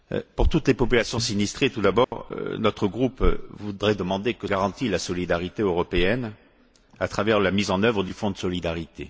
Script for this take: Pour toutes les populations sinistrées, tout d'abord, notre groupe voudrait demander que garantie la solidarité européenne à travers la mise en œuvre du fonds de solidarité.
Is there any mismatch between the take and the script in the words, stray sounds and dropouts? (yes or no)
yes